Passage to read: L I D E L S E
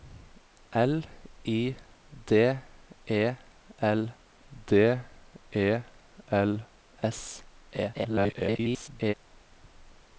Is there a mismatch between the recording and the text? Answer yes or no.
yes